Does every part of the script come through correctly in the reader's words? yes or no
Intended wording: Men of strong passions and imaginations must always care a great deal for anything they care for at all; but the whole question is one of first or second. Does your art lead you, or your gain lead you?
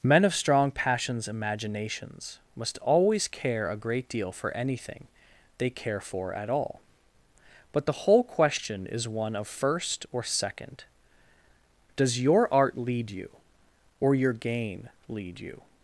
no